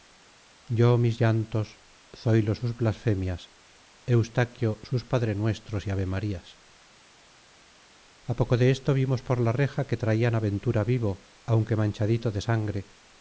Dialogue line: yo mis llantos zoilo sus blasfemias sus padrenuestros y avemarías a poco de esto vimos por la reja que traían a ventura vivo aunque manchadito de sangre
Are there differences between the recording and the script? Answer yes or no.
yes